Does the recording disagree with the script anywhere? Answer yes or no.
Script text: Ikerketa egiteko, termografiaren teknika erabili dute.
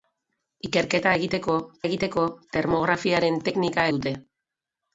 yes